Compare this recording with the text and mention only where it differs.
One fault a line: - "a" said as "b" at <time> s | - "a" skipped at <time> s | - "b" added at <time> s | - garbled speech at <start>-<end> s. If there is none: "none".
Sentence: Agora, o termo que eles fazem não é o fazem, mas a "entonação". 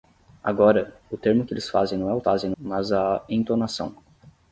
none